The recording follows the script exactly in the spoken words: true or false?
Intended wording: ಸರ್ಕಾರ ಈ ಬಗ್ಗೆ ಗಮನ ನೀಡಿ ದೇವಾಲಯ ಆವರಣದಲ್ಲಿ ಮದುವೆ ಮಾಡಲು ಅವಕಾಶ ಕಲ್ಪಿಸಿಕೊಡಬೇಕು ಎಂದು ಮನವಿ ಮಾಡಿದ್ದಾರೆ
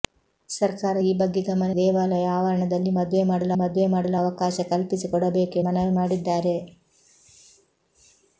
false